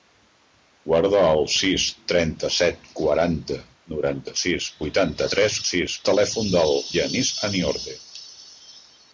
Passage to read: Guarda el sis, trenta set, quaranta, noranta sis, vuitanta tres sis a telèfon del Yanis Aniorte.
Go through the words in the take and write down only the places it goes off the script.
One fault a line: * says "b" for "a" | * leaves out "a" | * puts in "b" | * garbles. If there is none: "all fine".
all fine